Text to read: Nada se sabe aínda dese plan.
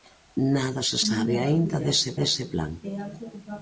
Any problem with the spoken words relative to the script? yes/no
yes